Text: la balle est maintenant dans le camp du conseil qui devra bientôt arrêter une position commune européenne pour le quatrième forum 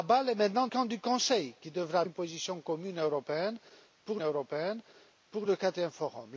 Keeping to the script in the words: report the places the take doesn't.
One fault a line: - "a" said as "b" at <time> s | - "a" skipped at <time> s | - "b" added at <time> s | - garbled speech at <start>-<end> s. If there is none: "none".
- "dans le" skipped at 0.7 s
- "bientôt arrêter" skipped at 2.0 s
- "européenne pour" added at 4.2 s